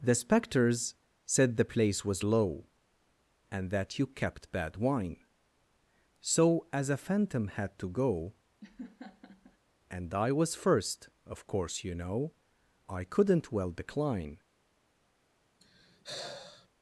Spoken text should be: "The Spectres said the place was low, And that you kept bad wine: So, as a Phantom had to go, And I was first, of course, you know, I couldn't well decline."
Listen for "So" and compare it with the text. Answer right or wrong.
right